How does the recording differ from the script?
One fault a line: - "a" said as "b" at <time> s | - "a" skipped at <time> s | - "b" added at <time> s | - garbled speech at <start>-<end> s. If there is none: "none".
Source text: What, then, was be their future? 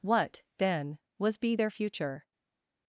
none